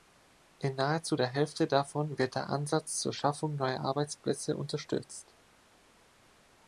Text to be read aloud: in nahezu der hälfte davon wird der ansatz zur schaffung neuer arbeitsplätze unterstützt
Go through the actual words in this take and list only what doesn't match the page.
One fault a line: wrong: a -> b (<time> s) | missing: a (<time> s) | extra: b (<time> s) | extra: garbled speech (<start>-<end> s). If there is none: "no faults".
no faults